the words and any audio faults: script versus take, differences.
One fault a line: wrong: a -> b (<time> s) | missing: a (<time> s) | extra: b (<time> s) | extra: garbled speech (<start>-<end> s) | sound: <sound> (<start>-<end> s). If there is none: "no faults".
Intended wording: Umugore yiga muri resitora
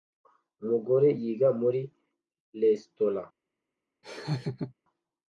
sound: laugh (4.0-4.7 s)